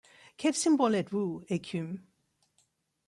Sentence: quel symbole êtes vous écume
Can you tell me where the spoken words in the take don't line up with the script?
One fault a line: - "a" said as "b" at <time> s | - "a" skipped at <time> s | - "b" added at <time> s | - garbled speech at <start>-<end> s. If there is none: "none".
none